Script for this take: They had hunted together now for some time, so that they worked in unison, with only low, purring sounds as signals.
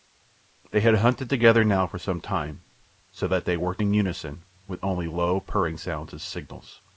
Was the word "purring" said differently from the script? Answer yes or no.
no